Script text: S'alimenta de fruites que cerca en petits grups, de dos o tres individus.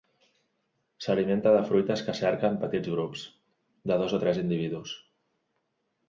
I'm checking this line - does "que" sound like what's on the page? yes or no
yes